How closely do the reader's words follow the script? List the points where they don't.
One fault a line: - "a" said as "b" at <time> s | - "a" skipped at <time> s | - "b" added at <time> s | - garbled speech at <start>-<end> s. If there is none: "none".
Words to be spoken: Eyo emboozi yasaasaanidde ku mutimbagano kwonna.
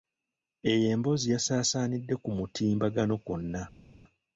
none